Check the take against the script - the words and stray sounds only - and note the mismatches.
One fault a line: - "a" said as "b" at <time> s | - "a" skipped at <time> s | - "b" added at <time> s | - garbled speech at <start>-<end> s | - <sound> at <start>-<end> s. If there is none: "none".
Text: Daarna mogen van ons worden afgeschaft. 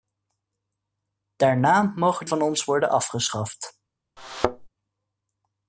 - thud at 4.2-4.7 s